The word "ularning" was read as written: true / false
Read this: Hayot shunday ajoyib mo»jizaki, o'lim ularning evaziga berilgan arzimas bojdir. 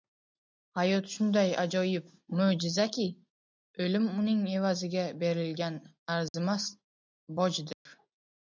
false